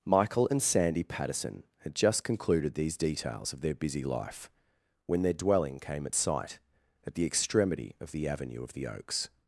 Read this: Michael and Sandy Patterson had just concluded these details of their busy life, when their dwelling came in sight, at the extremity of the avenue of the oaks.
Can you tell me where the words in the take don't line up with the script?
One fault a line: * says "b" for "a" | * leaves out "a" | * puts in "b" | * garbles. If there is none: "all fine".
* says "at" for "in"